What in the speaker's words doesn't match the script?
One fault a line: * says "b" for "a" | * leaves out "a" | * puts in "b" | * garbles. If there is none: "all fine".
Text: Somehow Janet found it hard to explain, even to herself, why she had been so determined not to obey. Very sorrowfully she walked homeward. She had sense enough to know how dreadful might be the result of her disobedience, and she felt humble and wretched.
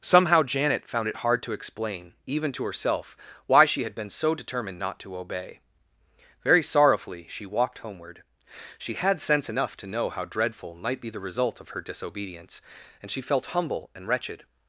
all fine